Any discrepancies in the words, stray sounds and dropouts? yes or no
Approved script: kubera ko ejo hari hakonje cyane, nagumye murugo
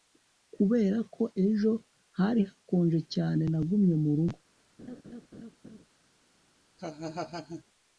yes